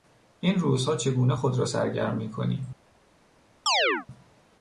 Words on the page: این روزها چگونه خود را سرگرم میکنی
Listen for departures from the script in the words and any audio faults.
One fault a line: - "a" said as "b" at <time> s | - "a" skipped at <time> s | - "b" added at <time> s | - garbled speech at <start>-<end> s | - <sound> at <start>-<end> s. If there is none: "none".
- chirp at 3.7-4.1 s